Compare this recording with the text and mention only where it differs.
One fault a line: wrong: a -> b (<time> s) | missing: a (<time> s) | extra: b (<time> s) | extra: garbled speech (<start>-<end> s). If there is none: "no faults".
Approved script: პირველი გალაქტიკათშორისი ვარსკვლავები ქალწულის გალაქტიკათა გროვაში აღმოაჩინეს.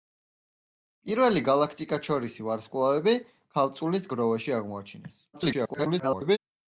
missing: გალაქტიკათა (4.1 s)
extra: garbled speech (5.3-6.4 s)